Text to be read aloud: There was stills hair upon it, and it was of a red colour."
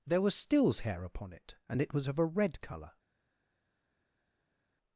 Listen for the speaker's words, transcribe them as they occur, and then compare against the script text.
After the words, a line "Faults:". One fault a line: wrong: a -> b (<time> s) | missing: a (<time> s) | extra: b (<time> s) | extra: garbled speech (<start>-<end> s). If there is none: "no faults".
There was stills hair upon it, and it was of a red colour."
Faults:
no faults